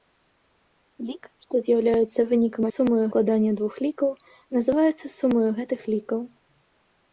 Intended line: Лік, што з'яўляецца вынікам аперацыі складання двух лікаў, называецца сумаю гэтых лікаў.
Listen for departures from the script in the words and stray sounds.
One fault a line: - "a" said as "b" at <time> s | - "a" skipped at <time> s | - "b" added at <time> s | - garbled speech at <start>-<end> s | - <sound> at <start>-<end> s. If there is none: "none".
- "аперацыі" said as "сумаю" at 2.7 s